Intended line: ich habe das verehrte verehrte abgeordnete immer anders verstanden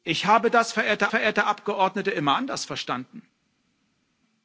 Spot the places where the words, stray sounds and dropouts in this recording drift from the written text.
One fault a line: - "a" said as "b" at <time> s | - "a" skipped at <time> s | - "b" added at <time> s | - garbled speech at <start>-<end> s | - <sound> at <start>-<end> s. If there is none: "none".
none